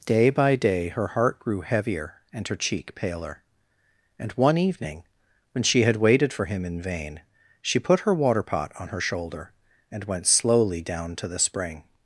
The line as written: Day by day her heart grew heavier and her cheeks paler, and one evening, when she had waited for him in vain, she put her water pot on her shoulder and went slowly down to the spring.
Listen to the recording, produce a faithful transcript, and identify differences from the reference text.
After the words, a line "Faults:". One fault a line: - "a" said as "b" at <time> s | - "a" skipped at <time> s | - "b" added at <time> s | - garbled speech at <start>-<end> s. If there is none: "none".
Day by day her heart grew heavier and her cheek paler, and one evening, when she had waited for him in vain, she put her water pot on her shoulder and went slowly down to the spring.
Faults:
- "cheeks" said as "cheek" at 2.5 s